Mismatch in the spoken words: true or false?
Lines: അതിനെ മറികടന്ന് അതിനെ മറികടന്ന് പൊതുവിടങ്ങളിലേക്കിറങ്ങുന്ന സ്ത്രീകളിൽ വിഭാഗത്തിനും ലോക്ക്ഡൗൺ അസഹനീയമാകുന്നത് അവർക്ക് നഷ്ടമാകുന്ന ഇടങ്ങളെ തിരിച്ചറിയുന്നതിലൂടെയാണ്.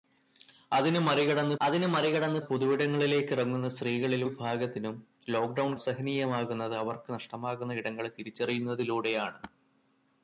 false